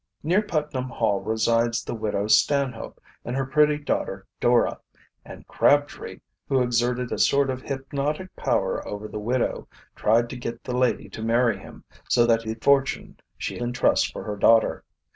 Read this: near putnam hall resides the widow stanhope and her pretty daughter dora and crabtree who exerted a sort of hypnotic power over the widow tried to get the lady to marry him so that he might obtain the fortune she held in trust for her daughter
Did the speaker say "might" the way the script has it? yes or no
no